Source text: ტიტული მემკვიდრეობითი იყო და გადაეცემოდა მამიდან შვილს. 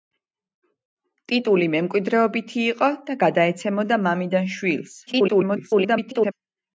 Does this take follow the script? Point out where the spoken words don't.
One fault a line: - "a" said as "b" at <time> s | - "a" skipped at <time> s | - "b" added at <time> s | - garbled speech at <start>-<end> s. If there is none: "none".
- garbled speech at 5.1-6.3 s